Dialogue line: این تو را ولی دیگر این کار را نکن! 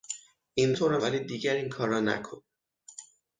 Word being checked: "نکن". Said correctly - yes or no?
yes